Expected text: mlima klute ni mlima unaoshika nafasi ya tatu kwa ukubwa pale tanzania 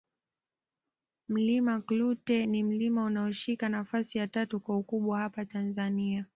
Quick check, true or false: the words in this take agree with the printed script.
false